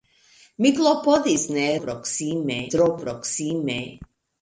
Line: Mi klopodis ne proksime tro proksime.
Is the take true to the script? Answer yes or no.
yes